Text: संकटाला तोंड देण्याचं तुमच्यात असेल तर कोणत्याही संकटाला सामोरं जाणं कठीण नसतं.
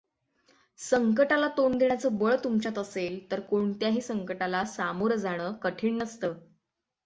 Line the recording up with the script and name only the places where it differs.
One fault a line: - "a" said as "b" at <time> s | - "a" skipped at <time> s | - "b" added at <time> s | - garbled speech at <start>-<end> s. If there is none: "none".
- "बळ" added at 2.2 s